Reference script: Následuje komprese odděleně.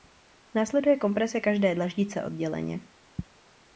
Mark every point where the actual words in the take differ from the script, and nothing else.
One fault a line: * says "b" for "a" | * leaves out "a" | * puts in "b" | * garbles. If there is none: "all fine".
* puts in "každé dlaždice"